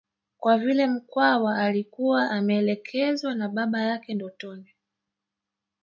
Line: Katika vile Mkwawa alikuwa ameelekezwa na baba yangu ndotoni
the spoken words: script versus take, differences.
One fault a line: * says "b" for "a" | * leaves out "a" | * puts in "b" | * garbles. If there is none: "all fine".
* says "Kwa" for "Katika"
* says "yake" for "yangu"